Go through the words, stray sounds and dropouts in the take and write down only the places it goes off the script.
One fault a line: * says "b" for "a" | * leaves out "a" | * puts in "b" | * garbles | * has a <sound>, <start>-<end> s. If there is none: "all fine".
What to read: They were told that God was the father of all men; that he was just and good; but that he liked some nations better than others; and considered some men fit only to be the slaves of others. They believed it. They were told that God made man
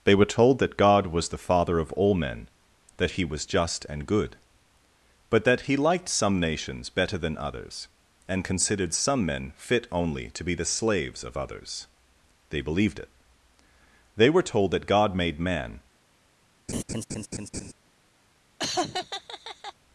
* has a laugh, 16.7-17.7 s
* has a laugh, 18.6-19.7 s